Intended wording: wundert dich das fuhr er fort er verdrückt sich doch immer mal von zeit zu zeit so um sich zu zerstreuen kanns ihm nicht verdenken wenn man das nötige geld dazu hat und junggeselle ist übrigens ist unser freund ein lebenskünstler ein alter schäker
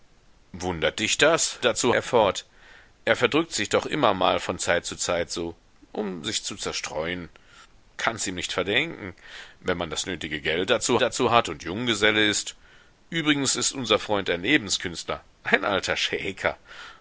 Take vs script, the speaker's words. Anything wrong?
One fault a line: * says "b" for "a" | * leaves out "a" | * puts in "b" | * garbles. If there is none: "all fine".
* says "dazu" for "fuhr"
* puts in "dazu"